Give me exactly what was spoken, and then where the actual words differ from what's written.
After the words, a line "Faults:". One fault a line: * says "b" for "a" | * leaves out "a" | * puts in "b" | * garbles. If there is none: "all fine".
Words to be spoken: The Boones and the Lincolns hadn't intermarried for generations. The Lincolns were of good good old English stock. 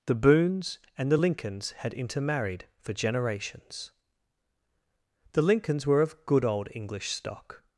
The Boones and the Lincolns had intermarried for generations. The Lincolns were of good old English stock.
Faults:
* says "had" for "hadn't"
* leaves out "good"